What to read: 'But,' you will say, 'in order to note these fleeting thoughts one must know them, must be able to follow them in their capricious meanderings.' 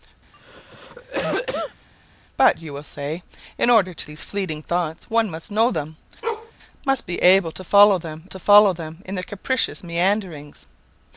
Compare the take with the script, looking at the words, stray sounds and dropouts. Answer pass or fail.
fail